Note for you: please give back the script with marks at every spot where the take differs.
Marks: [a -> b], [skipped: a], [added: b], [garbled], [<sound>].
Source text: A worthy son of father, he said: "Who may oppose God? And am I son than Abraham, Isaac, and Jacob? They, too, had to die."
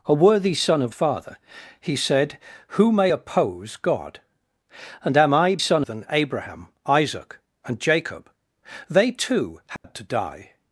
A worthy son of father, he said: "Who may oppose God? And am I son than Abraham, Isaac, and Jacob? They, too, had [dropout] to die."